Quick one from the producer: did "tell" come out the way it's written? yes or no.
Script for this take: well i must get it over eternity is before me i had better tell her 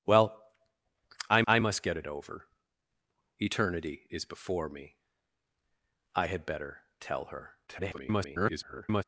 yes